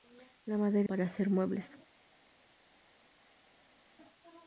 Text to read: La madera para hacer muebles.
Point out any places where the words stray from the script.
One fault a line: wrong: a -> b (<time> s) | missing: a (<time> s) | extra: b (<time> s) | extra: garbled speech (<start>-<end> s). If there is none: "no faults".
no faults